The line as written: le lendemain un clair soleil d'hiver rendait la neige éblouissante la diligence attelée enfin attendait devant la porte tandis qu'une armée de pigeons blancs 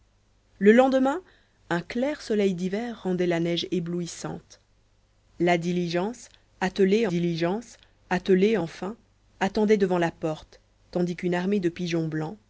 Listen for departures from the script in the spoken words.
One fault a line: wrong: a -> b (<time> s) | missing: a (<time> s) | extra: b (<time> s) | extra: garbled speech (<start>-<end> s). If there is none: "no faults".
extra: diligence attelée (7.0 s)